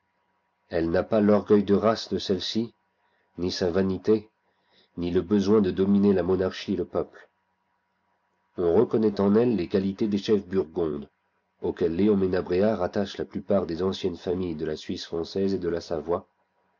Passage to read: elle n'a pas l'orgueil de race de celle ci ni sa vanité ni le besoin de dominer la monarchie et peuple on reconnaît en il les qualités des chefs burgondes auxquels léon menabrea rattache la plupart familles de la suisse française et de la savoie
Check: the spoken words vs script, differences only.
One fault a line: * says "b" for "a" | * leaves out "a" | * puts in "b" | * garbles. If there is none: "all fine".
* puts in "le"
* says "elle" for "il"
* puts in "des anciennes"